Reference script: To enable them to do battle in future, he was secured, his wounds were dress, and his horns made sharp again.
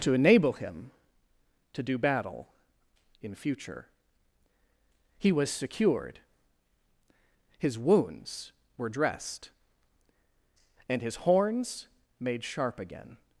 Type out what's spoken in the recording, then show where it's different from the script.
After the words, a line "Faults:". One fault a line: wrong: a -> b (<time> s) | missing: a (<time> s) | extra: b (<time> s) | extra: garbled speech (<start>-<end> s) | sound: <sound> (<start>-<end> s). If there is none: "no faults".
To enable him to do battle in future, he was secured, his wounds were dressed, and his horns made sharp again.
Faults:
wrong: them -> him (0.5 s)
wrong: dress -> dressed (8.9 s)